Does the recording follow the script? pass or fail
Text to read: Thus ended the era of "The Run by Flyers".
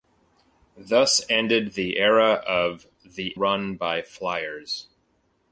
pass